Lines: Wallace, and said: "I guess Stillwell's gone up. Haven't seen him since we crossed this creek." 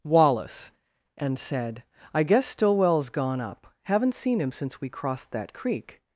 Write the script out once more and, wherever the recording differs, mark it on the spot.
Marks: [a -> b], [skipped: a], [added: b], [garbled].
Wallace, and said: "I guess Stillwell's gone up. Haven't seen him since we crossed [this -> that] creek."